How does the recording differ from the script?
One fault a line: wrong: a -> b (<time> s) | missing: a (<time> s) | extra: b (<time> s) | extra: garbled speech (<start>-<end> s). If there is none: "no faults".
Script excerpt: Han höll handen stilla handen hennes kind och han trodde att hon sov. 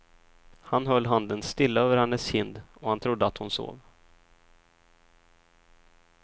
wrong: handen -> över (1.8 s)